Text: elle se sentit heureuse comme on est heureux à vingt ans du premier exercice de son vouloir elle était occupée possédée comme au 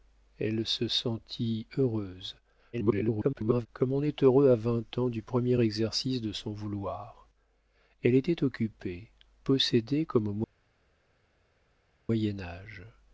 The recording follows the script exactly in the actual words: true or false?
false